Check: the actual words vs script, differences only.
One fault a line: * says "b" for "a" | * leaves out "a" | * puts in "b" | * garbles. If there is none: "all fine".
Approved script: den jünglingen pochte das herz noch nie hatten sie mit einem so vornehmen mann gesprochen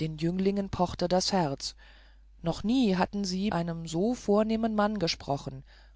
* leaves out "mit"